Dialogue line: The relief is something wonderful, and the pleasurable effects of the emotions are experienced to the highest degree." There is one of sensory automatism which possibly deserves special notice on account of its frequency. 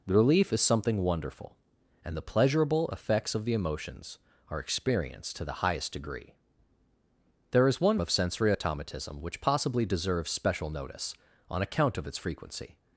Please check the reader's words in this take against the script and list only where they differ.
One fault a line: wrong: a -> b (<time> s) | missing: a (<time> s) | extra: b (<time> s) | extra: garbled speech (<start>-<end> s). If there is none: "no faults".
no faults